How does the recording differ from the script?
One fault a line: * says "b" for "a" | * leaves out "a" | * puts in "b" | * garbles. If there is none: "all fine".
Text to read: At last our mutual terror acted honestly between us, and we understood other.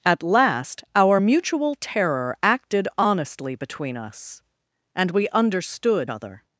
all fine